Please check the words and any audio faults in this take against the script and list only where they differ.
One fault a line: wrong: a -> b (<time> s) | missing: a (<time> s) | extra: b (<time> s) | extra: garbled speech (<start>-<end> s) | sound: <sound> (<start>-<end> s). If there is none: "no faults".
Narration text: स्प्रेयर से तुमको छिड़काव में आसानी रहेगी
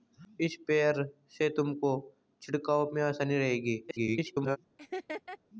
extra: garbled speech (3.9-4.6 s)
sound: laugh (4.8-5.4 s)